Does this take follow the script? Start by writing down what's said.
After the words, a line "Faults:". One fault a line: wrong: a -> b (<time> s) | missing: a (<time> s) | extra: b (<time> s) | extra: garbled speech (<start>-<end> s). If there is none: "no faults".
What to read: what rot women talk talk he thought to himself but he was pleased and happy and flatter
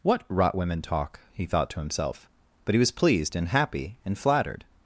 what rot women talk he thought to himself but he was pleased and happy and flattered
Faults:
missing: talk (1.2 s)
wrong: flatter -> flattered (4.2 s)